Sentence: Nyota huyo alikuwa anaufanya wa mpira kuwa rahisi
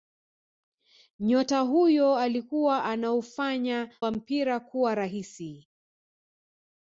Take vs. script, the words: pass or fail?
pass